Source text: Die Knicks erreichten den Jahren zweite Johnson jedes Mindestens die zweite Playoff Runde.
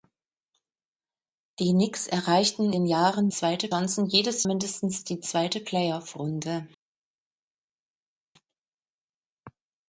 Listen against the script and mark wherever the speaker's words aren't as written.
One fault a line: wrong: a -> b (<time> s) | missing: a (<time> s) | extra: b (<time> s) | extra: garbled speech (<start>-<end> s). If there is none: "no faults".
no faults